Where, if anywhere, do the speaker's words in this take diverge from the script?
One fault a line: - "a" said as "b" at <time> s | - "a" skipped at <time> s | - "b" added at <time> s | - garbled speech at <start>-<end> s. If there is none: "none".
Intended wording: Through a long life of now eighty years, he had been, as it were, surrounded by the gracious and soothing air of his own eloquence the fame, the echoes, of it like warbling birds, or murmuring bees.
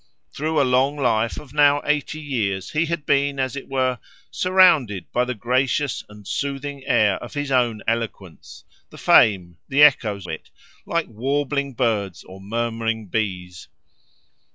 - "of" skipped at 10.3 s